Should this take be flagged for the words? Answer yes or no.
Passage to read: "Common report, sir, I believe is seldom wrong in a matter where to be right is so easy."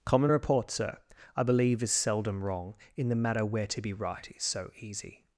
yes